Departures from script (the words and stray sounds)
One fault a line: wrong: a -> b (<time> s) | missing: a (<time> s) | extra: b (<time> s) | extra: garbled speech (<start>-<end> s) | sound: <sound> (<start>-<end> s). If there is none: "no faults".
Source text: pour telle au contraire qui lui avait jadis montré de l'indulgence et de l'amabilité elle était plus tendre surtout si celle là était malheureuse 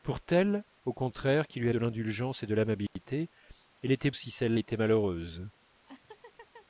missing: avait jadis montré (1.7 s)
sound: dropout (2.9-3.0 s)
missing: plus tendre surtout (4.1 s)
missing: là (4.6 s)
sound: laugh (5.9-6.7 s)